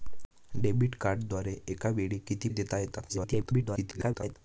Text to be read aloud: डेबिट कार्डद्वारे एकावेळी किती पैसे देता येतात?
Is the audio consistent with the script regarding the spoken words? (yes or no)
no